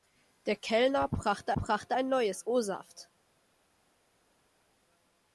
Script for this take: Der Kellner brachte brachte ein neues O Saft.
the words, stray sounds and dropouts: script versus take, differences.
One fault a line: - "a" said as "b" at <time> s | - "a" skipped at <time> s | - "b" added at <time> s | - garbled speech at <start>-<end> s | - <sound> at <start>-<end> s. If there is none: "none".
none